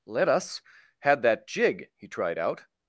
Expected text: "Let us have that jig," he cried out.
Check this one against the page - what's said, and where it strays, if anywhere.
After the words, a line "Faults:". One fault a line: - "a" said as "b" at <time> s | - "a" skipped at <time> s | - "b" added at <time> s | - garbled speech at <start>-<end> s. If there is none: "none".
"Let us had that jig," he tried out.
Faults:
- "have" said as "had" at 1.0 s
- "cried" said as "tried" at 2.1 s